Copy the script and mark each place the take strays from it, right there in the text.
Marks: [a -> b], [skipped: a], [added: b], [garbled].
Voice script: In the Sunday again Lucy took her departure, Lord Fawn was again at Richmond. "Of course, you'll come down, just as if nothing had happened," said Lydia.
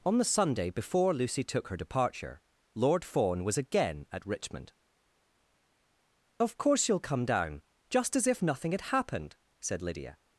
[In -> On] the Sunday [again -> before] Lucy took her departure, Lord Fawn was again at Richmond. "Of course, you'll come down, just as if nothing had happened," said Lydia.